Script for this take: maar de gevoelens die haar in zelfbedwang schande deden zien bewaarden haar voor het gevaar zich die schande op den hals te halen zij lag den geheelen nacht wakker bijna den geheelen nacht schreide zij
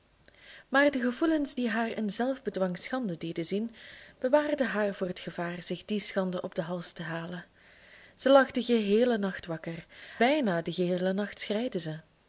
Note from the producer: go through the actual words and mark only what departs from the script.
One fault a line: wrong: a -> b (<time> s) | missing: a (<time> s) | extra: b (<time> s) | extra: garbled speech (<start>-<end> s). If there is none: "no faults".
no faults